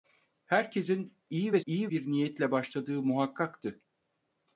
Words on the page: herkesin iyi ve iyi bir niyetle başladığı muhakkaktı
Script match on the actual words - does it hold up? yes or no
yes